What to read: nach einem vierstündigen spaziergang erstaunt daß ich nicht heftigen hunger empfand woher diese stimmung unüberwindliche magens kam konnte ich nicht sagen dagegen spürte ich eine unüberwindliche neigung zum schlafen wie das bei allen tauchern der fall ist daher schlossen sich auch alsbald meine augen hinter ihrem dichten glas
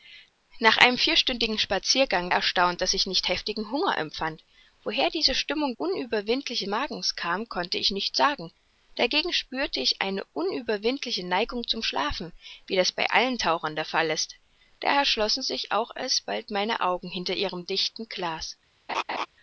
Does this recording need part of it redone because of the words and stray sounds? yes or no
yes